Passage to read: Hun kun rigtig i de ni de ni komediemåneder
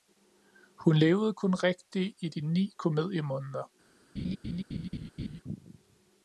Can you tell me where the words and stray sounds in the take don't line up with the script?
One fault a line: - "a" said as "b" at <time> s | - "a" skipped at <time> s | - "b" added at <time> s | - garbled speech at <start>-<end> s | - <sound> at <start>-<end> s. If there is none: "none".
- "levede" added at 0.9 s
- "de ni" skipped at 2.7 s
- laugh at 4.2-5.4 s